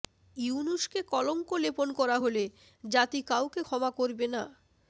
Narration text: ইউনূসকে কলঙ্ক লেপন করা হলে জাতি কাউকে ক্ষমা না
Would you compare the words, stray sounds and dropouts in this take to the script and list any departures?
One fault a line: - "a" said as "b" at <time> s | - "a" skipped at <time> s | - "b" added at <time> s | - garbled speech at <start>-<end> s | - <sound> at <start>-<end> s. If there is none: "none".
- "করবে" added at 4.0 s